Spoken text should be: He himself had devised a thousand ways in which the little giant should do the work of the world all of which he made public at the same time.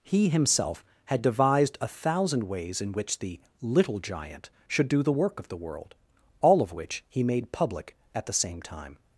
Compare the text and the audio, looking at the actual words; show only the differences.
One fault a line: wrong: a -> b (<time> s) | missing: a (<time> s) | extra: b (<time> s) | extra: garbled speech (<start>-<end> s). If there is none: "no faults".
no faults